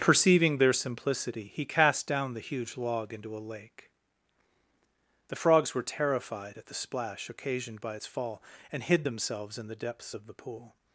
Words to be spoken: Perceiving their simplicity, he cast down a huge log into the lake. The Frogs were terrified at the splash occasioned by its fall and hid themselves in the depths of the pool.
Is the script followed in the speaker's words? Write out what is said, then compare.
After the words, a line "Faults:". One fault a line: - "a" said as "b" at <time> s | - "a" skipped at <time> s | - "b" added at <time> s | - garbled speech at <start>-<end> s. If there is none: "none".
Perceiving their simplicity, he cast down the huge log into a lake. The Frogs were terrified at the splash occasioned by its fall and hid themselves in the depths of the pool.
Faults:
- "a" said as "the" at 2.3 s
- "the" said as "a" at 3.4 s